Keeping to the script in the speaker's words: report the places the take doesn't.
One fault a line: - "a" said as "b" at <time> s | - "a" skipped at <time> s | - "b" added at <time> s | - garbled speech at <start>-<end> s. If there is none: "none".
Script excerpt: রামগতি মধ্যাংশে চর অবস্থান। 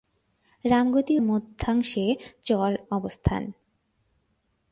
none